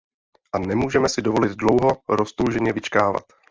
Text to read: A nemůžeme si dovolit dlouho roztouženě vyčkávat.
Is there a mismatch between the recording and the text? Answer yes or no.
no